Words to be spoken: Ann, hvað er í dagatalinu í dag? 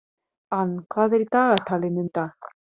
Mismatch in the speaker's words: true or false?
false